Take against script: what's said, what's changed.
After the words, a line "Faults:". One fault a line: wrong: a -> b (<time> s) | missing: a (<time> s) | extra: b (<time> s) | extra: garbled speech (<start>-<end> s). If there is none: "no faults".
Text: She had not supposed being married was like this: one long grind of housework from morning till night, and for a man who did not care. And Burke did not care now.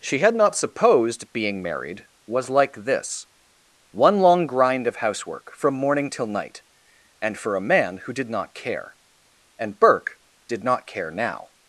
She had not supposed being married was like this: one long grind of housework from morning till night, and for a man who did not care. And Burke did not care now.
Faults:
no faults